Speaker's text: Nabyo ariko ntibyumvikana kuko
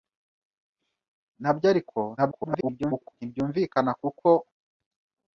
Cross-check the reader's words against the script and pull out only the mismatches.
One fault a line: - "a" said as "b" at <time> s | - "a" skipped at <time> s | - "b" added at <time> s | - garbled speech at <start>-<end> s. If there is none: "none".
- garbled speech at 2.2-3.1 s